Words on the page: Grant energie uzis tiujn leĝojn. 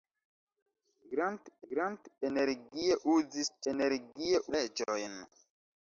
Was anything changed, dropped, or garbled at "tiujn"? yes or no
yes